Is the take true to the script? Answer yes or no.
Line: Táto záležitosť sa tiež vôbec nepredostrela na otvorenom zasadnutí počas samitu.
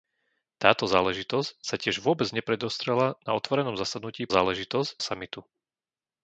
no